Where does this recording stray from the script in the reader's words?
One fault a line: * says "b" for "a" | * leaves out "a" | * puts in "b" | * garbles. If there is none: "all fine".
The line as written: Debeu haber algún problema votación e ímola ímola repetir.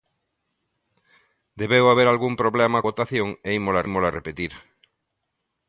all fine